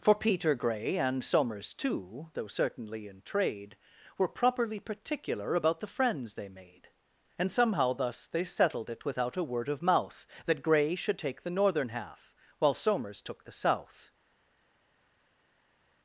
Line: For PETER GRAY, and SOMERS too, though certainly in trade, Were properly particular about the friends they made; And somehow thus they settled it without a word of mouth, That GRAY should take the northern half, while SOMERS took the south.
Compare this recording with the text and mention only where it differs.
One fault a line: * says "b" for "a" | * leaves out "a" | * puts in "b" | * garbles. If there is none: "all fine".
all fine